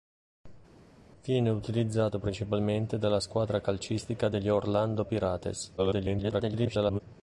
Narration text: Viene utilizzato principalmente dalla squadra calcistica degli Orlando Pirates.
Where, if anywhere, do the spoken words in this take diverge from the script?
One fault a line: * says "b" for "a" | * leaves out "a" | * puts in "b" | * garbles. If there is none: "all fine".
* garbles